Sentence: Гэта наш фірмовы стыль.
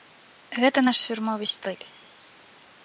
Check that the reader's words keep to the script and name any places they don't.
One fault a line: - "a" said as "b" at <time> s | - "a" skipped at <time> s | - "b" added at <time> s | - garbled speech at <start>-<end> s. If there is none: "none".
none